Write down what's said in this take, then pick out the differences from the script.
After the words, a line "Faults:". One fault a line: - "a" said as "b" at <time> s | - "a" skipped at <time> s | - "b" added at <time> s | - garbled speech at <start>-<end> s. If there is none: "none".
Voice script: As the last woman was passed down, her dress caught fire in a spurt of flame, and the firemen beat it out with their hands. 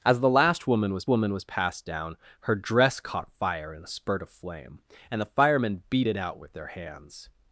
As the last woman was woman was passed down, her dress caught fire in a spurt of flame, and the firemen beat it out with their hands.
Faults:
- "woman was" added at 1.1 s